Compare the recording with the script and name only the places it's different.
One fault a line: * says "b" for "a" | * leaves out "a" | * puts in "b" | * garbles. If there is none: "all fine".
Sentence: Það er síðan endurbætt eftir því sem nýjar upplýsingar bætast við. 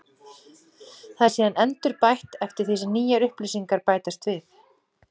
all fine